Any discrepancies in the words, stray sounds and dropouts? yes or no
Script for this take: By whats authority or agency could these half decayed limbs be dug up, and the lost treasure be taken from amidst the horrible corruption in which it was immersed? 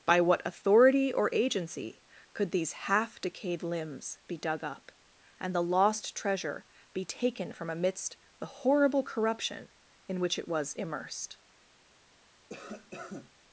yes